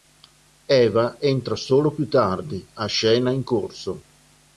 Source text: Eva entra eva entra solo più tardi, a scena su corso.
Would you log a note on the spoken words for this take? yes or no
yes